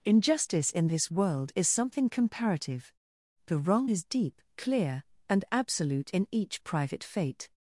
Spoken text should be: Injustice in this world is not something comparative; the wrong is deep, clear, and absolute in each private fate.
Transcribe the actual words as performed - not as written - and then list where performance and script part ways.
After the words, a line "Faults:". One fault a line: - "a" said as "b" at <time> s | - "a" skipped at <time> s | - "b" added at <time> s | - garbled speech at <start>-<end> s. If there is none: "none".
Injustice in this world is something comparative; the wrong is deep, clear, and absolute in each private fate.
Faults:
- "not" skipped at 1.7 s